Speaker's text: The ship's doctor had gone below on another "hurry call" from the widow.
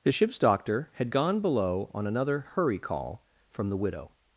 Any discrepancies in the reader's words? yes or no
no